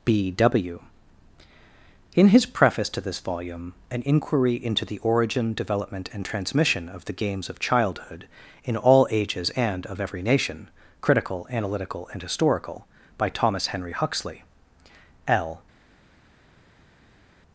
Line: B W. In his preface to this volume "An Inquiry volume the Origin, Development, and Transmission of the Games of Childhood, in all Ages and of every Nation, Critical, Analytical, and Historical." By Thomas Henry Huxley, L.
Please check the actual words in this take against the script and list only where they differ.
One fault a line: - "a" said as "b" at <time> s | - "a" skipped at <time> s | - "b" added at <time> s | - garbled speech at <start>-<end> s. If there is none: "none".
- "volume" said as "into" at 4.5 s